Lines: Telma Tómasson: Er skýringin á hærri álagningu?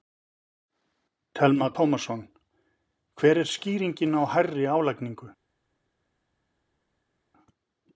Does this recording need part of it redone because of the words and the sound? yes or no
yes